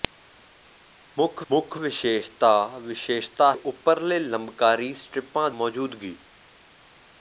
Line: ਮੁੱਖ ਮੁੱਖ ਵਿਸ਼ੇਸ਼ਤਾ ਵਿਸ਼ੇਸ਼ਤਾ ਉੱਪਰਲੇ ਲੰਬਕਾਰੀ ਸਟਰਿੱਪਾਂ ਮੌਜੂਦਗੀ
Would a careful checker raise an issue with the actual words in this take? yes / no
no